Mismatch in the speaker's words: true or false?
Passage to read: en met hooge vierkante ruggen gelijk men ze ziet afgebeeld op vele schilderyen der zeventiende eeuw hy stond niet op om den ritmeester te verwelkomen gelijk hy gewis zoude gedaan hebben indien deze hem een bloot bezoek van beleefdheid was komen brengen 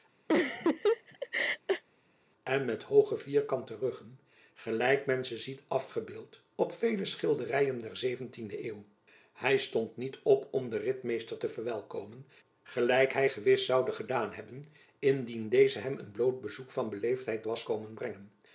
false